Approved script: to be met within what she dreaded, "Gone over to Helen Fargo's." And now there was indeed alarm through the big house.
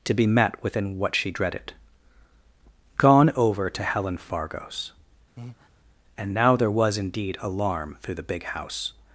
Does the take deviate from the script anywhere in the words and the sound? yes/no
yes